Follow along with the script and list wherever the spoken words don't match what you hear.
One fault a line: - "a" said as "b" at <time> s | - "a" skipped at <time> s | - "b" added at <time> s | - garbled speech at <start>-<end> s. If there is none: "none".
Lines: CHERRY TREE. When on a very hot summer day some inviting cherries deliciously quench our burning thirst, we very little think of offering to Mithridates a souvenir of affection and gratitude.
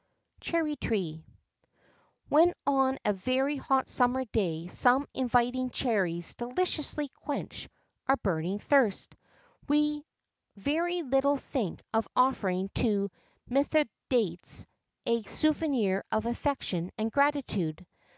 none